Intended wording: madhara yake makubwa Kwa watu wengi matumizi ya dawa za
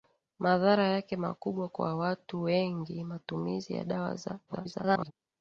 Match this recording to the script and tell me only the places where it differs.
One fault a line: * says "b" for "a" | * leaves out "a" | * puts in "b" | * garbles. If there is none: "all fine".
* garbles